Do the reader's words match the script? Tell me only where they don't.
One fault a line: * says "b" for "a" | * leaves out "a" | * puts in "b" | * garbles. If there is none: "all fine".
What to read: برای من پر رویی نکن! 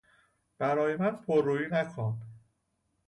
all fine